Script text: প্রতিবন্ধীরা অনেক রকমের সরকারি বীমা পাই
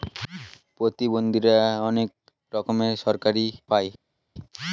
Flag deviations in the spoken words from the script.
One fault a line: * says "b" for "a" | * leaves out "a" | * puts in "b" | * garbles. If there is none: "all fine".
* leaves out "বীমা"